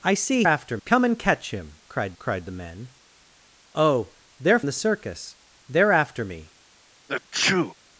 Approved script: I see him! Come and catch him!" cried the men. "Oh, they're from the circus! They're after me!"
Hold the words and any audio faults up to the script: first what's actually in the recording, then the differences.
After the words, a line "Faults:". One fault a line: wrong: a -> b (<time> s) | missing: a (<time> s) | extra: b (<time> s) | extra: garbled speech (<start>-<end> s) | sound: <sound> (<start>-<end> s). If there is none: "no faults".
I see after! Come and catch him!" cried cried the men. "Oh, they're the circus! They're after me!"
Faults:
wrong: him -> after (0.4 s)
extra: cried (2.2 s)
missing: from (4.6 s)
sound: sneeze (7.1-7.7 s)